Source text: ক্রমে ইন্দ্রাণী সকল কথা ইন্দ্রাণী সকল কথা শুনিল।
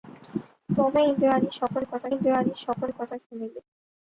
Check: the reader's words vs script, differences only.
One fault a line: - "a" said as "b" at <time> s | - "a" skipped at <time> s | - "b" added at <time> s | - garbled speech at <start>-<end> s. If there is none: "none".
none